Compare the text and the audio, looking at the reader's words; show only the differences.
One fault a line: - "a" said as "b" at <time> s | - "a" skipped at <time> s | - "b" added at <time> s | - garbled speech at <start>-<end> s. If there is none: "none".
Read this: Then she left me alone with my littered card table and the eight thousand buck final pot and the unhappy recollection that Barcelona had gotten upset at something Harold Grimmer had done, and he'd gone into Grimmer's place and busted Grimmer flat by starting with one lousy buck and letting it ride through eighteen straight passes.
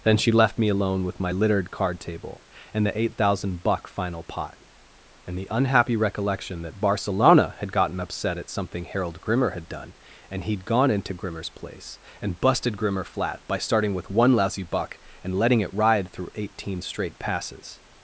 none